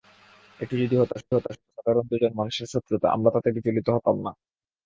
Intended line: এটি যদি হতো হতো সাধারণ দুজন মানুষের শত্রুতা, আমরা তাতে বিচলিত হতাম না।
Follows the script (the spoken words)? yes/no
yes